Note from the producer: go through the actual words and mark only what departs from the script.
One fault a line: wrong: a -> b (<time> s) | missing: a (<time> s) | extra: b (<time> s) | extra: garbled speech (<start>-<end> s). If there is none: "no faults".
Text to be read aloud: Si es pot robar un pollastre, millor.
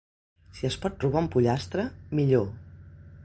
no faults